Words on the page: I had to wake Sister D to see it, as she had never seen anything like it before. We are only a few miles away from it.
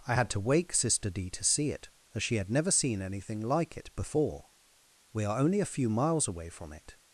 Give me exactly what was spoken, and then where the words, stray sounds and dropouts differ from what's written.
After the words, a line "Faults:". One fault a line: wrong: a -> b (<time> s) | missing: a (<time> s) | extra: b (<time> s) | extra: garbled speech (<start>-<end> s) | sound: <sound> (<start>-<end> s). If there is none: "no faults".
I had to wake Sister D to see it, as she had never seen anything like it before. We are only a few miles away from it.
Faults:
no faults